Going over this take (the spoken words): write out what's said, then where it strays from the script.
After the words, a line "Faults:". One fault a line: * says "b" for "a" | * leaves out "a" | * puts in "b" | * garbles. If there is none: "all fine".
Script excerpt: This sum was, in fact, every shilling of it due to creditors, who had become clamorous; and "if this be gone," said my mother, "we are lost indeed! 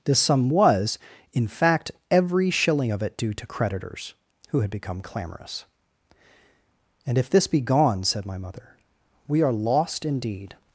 This sum was, in fact, every shilling of it due to creditors, who had become clamorous; and "if this be gone," said my mother, "we are lost indeed!
Faults:
all fine